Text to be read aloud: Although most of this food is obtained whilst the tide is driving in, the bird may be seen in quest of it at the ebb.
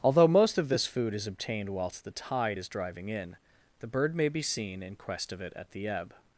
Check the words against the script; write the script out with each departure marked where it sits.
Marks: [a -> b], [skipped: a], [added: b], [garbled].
Although most of this food is obtained whilst the tide is driving in, the bird may be seen in quest of it at the ebb.